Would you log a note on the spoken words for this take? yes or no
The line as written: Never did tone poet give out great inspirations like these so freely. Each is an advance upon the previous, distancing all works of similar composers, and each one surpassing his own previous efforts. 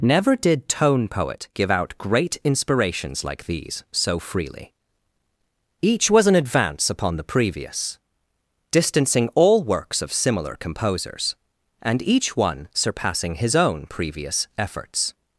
yes